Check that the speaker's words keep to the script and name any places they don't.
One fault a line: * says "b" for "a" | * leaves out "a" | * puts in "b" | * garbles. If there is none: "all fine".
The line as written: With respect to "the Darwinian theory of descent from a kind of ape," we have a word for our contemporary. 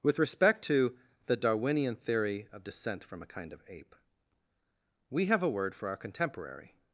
all fine